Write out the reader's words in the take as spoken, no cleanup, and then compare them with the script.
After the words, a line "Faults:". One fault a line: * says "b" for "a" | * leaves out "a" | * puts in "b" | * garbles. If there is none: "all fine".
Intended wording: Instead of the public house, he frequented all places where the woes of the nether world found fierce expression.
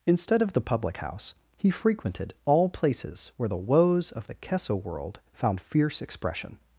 Instead of the public house, he frequented all places where the woes of the kesso world found fierce expression.
Faults:
* says "kesso" for "nether"